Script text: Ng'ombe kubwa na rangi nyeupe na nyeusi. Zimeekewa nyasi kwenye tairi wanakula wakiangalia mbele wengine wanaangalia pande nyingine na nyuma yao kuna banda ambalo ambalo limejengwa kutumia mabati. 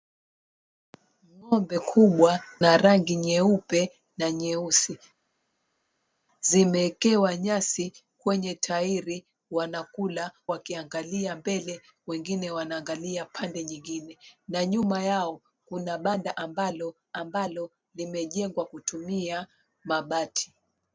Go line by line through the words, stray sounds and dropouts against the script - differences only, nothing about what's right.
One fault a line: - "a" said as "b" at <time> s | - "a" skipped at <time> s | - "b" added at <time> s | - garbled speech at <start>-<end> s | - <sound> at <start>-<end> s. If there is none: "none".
none